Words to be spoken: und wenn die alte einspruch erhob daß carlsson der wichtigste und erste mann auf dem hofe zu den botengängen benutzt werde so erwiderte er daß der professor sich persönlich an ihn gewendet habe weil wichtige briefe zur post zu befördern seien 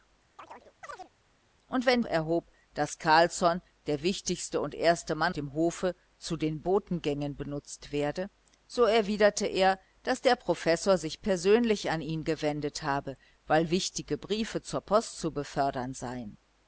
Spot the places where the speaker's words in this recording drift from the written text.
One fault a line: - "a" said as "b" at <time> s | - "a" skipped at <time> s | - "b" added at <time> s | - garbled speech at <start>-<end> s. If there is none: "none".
- "die alte einspruch" skipped at 2.0 s
- "auf" skipped at 5.3 s